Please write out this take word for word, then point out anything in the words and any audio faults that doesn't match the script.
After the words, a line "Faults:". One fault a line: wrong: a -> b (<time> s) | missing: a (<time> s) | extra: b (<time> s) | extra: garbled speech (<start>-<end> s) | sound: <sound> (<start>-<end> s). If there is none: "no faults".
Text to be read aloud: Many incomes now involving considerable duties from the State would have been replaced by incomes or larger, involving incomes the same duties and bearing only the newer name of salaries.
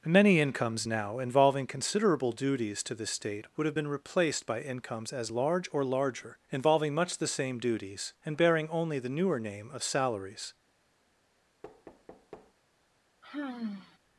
Many incomes now involving considerable duties to the State would have been replaced by incomes as large or larger, involving much the same duties and bearing only the newer name of salaries.
Faults:
wrong: from -> to (2.8 s)
extra: as large (5.1 s)
wrong: incomes -> much (6.9 s)
sound: thud (11.6-12.5 s)
sound: sigh (13.2-14.0 s)